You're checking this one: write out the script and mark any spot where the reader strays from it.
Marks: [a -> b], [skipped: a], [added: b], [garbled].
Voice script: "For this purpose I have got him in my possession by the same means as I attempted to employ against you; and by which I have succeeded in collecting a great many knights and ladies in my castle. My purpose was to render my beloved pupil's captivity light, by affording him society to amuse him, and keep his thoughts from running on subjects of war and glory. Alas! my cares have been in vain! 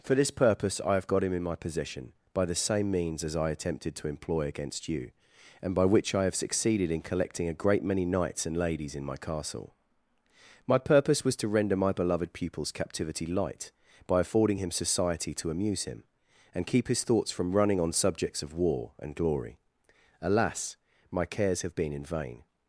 "For this purpose I have got him in my possession by the same means as I attempted to employ against you; and by which I have succeeded in collecting a great many knights and ladies in my castle. My purpose was to render my beloved pupil's captivity light, by affording him society to amuse him, and keep his thoughts from running on subjects of war and glory. Alas! my cares have been in vain!